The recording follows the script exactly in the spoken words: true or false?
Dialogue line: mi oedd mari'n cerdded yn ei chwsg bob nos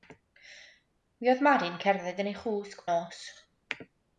false